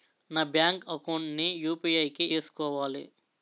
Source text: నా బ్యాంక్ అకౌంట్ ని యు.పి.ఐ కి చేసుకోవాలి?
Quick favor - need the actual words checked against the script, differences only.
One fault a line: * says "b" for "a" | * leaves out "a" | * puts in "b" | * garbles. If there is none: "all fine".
all fine